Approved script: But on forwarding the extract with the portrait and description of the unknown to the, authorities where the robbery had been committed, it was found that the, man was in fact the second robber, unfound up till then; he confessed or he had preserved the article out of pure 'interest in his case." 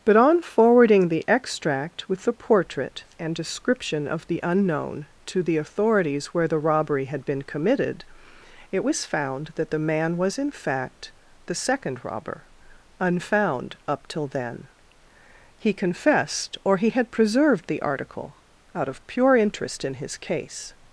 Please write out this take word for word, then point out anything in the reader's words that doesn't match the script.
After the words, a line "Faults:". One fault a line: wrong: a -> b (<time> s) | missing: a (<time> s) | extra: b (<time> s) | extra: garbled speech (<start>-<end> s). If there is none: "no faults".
But on forwarding the extract with the portrait and description of the unknown to the, authorities where the robbery had been committed, it was found that the, man was in fact the second robber, unfound up till then; he confessed or he had preserved the article out of pure 'interest in his case."
Faults:
no faults